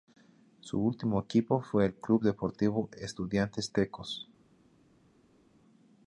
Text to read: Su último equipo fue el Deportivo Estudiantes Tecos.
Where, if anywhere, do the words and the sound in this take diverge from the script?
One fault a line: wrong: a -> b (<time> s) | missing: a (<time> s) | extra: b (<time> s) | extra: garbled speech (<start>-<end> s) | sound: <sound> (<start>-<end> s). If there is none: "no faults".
extra: Club (1.9 s)